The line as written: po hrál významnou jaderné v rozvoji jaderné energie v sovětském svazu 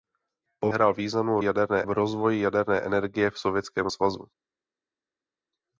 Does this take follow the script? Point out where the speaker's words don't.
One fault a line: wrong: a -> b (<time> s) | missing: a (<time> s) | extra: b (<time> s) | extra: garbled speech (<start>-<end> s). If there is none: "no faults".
no faults